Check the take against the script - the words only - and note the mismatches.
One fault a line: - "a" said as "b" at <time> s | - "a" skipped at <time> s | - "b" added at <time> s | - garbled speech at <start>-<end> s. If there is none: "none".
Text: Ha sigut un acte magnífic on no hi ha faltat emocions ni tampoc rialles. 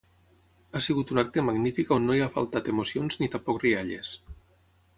none